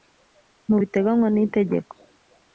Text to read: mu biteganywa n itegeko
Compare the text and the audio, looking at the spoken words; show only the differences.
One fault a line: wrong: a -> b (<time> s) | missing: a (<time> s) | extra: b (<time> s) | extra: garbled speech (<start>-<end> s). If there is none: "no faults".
no faults